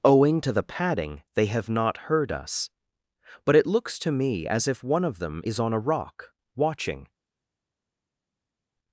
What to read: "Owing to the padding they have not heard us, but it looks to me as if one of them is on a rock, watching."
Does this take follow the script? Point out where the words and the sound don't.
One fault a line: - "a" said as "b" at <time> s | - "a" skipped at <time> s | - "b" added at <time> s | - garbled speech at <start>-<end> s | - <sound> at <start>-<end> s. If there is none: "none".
none